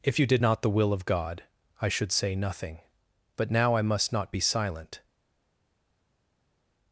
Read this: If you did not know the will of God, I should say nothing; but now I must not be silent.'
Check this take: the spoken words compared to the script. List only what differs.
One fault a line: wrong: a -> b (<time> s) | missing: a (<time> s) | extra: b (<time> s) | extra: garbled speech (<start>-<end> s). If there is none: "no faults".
missing: know (0.6 s)